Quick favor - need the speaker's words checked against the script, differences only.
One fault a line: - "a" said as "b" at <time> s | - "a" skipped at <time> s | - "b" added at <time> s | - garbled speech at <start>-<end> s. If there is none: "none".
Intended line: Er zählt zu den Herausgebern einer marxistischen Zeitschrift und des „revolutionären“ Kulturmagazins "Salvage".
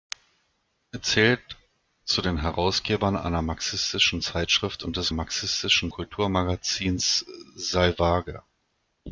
- "revolutionären" said as "marxistischen" at 5.1 s